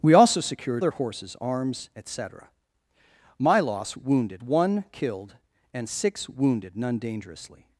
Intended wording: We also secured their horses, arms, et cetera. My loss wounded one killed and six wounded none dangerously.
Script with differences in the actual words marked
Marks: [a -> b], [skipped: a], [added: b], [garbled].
We also secured their horses, arms, et cetera. My loss wounded one killed and six wounded none dangerously.